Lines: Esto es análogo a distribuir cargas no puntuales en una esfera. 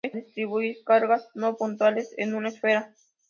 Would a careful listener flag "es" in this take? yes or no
yes